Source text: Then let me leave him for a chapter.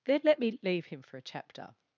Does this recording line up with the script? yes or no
yes